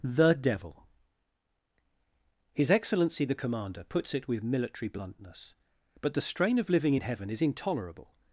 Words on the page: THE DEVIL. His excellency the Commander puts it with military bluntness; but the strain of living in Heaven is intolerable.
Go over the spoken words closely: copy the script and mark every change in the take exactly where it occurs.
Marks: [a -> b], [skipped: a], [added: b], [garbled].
THE DEVIL. His excellency the Commander puts it with military bluntness; but the strain of living in Heaven is intolerable.